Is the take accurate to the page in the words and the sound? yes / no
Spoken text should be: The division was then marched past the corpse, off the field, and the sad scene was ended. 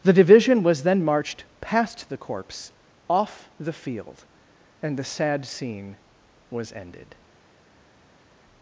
yes